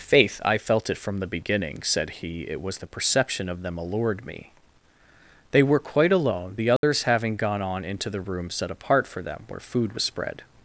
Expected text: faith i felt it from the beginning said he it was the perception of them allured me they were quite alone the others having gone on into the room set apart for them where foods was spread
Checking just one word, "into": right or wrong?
right